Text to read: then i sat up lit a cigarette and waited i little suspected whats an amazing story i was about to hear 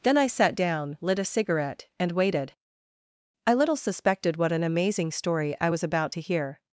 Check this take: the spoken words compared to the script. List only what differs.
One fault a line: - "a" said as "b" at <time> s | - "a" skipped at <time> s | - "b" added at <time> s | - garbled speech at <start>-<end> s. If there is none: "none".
- "up" said as "down" at 0.6 s
- "whats" said as "what" at 4.4 s